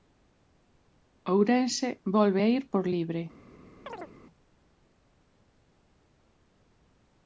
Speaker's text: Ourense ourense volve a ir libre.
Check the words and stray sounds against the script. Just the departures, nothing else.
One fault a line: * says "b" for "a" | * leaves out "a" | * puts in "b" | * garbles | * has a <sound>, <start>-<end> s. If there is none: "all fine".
* leaves out "ourense"
* puts in "por"
* has a chirp, 3.9-4.1 s